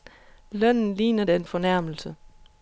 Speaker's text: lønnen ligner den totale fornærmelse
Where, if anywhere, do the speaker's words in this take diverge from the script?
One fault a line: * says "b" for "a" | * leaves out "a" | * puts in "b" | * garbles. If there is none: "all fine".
* leaves out "totale"